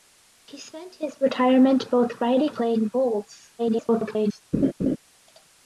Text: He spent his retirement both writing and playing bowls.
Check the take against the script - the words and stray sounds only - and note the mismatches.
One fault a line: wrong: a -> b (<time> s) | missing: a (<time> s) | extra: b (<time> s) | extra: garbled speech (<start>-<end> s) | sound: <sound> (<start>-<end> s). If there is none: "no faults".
missing: and (2.6 s)
extra: garbled speech (3.6-4.4 s)
sound: laugh (4.5-5.0 s)